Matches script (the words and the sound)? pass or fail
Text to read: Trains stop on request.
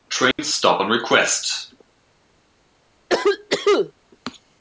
fail